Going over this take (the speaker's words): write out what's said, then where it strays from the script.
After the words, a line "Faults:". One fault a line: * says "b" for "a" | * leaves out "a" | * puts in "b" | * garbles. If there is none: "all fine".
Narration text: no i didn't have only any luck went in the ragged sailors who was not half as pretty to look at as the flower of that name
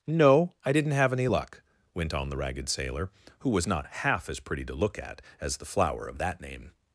no i didn't have any luck went on the ragged sailor who was not half as pretty to look at as the flower of that name
Faults:
* leaves out "only"
* says "on" for "in"
* says "sailor" for "sailors"